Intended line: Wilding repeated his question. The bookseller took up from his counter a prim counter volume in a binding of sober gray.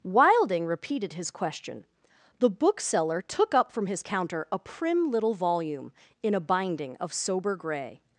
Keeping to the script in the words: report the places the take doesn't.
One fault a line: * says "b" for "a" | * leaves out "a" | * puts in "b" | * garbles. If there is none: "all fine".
* says "little" for "counter"